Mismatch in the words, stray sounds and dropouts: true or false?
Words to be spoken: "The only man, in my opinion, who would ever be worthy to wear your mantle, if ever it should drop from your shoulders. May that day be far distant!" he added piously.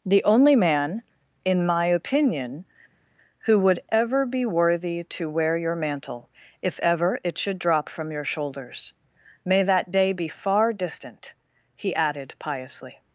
false